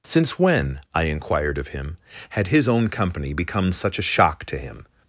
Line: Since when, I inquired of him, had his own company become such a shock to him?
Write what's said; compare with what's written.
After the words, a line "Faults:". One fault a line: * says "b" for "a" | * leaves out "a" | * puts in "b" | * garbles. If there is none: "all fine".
Since when, I inquired of him, had his own company become such a shock to him?
Faults:
all fine